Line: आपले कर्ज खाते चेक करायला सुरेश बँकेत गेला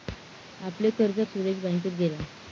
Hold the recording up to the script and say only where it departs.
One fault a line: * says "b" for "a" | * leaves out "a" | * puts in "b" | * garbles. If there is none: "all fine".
* leaves out "खाते चेक करायला"